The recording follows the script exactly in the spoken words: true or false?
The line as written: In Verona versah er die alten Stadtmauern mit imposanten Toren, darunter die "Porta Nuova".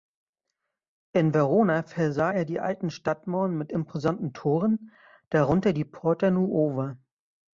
true